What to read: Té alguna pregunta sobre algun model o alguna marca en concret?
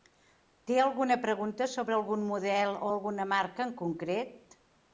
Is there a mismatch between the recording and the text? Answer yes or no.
no